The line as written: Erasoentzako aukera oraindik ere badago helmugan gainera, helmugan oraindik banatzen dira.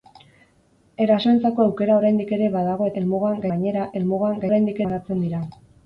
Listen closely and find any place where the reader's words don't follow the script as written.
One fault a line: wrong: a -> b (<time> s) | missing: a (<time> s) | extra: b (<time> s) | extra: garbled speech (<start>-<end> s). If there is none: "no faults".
no faults